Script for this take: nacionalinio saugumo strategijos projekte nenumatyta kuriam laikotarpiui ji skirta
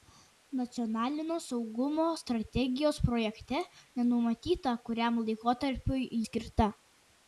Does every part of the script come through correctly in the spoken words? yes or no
no